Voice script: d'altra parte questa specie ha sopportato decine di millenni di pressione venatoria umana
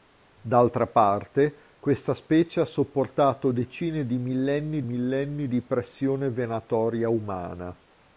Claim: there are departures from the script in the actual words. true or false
true